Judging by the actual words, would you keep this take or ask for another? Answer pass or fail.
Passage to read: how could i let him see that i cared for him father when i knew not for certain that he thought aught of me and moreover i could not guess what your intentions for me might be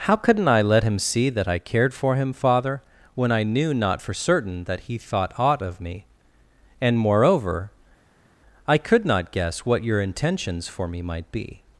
fail